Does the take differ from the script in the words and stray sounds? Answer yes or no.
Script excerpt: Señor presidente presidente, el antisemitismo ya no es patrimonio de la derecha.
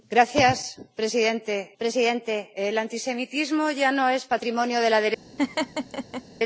yes